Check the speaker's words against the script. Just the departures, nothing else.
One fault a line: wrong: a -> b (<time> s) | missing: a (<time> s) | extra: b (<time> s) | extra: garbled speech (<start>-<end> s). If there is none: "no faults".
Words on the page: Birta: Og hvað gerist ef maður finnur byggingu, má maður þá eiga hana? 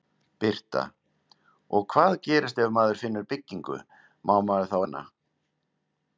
missing: eiga (4.8 s)